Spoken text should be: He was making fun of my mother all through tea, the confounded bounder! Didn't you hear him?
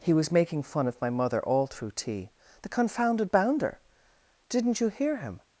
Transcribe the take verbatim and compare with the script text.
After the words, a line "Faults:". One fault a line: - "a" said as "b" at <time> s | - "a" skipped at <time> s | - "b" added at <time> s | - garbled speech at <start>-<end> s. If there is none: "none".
He was making fun of my mother all through tea, the confounded bounder! Didn't you hear him?
Faults:
none